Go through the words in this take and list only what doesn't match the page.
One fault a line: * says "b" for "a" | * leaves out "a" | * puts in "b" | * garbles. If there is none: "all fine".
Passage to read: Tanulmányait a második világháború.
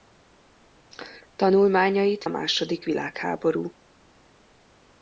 all fine